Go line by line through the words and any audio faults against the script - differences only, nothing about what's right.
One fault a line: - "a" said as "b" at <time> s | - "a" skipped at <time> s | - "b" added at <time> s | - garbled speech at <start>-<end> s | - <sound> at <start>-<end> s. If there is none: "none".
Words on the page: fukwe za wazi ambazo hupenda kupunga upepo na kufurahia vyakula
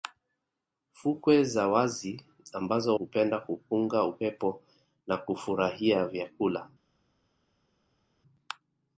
none